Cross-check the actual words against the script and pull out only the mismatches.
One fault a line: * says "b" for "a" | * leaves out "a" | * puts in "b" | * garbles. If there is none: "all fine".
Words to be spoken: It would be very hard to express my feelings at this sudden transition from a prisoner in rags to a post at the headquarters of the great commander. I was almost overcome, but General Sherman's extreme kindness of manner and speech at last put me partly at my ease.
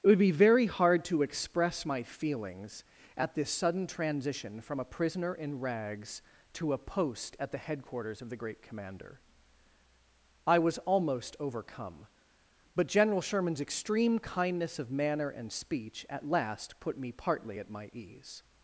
all fine